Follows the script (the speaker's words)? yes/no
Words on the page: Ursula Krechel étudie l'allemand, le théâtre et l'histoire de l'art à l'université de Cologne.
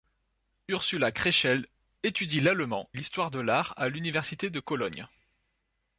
no